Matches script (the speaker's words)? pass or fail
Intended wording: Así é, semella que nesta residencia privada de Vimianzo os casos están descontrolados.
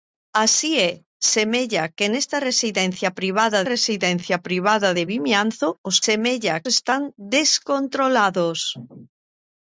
fail